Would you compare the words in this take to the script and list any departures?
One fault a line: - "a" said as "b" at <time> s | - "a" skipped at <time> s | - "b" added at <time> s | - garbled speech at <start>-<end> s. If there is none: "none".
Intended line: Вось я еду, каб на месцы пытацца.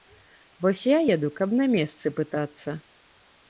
none